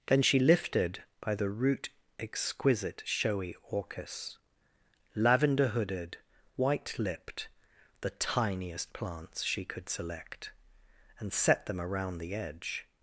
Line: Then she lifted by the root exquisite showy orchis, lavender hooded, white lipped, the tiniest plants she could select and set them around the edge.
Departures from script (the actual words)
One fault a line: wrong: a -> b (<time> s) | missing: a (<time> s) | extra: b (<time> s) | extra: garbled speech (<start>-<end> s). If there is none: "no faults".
no faults